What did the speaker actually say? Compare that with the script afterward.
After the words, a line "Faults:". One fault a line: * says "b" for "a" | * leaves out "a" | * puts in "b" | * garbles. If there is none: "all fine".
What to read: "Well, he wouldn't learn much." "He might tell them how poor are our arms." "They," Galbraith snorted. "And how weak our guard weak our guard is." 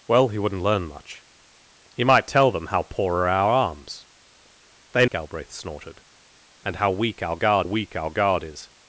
"Well, he wouldn't learn much." "He might tell them how poor are our arms." "They," Galbraith snorted. "And how weak our guard weak our guard is."
Faults:
all fine